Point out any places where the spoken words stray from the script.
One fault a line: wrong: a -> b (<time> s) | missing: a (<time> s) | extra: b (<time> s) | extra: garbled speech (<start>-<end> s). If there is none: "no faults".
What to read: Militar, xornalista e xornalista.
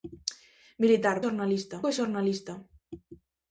no faults